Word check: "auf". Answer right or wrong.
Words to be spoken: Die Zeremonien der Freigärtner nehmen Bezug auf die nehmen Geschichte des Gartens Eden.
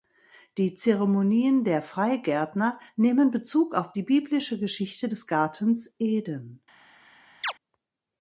right